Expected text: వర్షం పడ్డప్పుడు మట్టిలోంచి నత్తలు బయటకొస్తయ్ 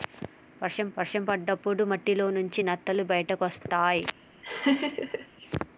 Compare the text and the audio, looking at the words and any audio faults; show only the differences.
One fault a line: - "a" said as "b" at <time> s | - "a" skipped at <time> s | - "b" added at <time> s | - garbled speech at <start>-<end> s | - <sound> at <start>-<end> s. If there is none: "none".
- "వర్షం" added at 1.0 s
- laugh at 4.4-5.3 s